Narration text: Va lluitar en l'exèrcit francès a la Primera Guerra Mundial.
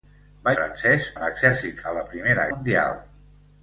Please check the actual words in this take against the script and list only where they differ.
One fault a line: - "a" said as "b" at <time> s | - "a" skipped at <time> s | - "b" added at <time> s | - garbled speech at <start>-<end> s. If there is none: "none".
- "lluitar" said as "francès" at 0.6 s
- "francès" skipped at 1.8 s
- "Guerra" skipped at 2.5 s